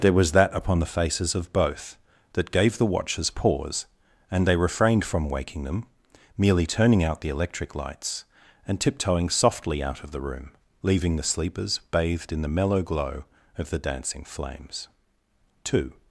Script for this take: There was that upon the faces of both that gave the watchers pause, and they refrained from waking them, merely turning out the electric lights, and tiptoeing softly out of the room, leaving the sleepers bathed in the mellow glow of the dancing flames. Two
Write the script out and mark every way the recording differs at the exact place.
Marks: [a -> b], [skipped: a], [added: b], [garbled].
There was that upon the faces of both that gave the watchers pause, and they refrained from waking them, merely turning out the electric lights, and tiptoeing softly out of the room, leaving the sleepers bathed in the mellow glow of the dancing flames. Two